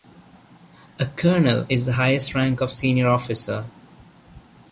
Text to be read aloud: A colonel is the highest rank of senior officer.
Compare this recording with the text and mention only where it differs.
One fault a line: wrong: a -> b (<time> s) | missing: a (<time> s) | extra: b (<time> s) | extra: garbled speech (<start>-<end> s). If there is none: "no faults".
no faults